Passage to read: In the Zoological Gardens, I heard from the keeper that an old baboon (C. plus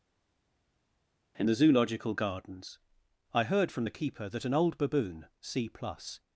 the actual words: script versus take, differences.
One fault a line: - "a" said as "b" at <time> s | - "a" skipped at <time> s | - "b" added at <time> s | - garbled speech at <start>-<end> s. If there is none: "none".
none